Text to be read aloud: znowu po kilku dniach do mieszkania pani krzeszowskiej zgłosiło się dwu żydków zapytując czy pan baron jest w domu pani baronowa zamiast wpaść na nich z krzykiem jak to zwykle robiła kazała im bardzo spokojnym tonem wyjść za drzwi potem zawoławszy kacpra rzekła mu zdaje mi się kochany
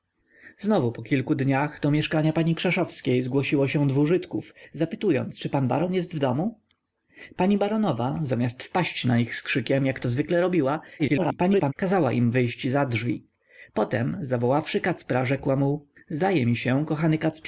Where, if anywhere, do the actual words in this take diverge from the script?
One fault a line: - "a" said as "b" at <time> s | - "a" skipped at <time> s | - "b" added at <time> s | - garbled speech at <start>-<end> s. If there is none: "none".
- garbled speech at 11.0-11.7 s
- "bardzo spokojnym tonem" skipped at 12.3 s